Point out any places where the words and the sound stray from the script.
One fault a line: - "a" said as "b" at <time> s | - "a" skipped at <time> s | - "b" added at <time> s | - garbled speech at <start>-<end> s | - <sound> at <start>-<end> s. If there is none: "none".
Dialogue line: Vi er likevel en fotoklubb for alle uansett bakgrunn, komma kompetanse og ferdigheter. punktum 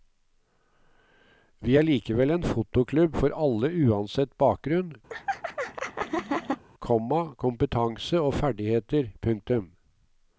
- laugh at 5.1-6.6 s